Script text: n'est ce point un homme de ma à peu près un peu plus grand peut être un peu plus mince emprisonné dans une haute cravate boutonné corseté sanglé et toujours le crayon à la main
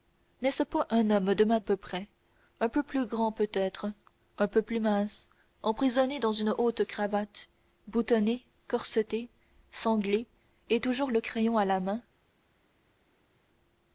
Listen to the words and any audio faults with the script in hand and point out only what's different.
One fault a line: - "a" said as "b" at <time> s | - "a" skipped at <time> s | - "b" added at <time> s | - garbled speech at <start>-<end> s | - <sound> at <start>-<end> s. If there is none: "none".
none